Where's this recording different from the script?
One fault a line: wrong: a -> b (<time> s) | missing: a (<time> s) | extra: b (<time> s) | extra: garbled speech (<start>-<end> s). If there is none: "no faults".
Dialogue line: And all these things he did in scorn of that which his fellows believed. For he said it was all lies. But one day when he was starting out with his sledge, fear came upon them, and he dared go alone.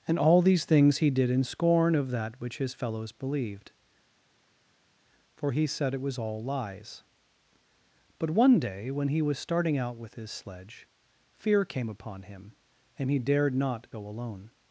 wrong: them -> him (12.2 s)
extra: not (13.5 s)